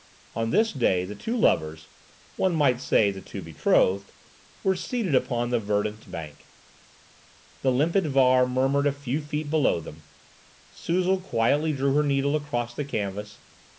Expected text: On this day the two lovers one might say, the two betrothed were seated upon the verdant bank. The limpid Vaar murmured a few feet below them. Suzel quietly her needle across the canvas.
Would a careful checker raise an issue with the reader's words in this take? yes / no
yes